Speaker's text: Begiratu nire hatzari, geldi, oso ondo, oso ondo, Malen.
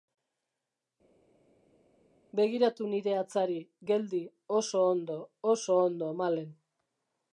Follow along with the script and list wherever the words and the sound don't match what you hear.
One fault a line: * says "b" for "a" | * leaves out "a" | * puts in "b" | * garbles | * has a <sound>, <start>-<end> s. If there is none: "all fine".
all fine